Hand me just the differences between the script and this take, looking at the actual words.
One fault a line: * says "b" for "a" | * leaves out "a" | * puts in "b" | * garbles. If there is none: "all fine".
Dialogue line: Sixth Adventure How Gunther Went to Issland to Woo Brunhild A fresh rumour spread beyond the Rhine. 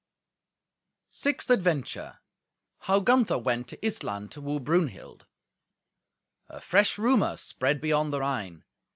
all fine